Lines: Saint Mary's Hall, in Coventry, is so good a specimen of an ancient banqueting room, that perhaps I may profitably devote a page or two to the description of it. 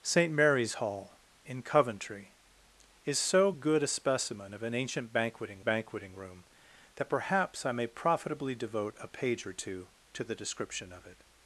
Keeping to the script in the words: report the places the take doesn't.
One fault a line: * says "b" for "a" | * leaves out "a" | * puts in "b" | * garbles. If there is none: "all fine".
* puts in "banqueting"